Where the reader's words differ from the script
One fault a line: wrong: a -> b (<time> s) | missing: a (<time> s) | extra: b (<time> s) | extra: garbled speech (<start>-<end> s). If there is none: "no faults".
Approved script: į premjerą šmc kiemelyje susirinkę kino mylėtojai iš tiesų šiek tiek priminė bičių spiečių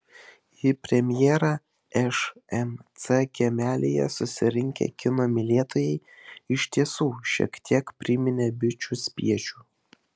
no faults